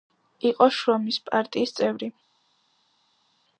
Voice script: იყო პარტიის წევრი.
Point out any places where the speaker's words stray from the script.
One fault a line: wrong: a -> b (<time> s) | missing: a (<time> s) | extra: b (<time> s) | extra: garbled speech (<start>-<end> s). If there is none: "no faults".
extra: შრომის (0.8 s)